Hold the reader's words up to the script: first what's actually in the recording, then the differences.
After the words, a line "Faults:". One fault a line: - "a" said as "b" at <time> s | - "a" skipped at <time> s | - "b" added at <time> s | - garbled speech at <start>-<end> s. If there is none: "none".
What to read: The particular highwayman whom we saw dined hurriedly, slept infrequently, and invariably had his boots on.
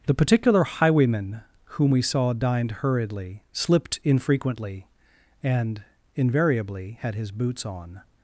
The particular highwayman whom we saw dined hurriedly, slipped infrequently, and invariably had his boots on.
Faults:
- "slept" said as "slipped" at 3.5 s